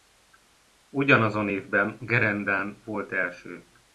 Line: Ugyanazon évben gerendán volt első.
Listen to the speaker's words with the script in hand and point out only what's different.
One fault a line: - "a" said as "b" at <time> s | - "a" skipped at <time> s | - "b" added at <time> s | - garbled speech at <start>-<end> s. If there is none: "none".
none